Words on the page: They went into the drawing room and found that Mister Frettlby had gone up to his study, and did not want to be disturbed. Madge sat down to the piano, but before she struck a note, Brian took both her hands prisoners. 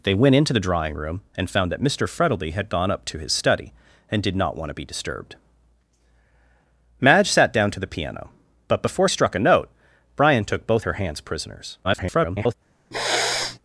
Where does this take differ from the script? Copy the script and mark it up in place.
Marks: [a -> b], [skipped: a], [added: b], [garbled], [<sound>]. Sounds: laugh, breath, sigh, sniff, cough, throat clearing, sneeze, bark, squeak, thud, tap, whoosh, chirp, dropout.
They went into the drawing room and found that Mister Frettlby had gone up to his study, and did not want to be disturbed. Madge sat down to the piano, but before [skipped: she] struck a note, Brian took both her hands prisoners. [garbled] [sniff]